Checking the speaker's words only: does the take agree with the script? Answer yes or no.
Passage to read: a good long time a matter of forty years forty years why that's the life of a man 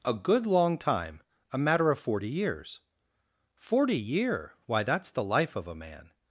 no